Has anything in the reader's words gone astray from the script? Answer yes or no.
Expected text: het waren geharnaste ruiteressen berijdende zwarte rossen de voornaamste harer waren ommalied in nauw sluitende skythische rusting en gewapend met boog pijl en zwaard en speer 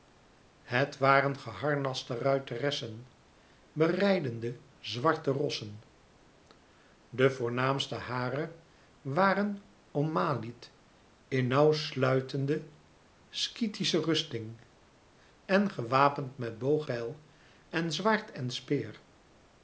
no